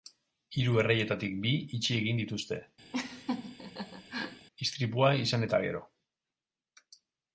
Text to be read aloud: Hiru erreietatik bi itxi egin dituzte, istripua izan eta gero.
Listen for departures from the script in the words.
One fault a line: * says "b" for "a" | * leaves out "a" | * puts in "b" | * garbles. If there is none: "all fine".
all fine